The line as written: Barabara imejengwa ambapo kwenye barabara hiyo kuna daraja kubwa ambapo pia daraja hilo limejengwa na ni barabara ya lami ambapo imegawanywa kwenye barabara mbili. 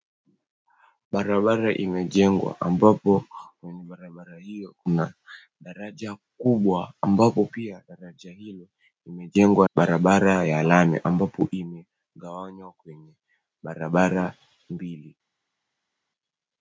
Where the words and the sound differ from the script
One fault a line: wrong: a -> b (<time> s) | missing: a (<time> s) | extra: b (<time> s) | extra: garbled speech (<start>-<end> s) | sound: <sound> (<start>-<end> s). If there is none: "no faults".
missing: na ni (9.7 s)